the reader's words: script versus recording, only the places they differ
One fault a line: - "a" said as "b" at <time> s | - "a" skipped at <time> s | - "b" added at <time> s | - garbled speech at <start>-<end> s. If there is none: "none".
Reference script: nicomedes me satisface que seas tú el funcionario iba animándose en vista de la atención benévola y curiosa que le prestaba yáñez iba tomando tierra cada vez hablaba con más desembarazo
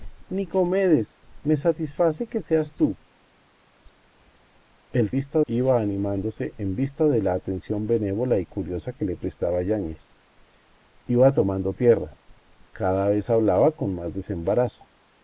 - "funcionario" said as "vista" at 5.1 s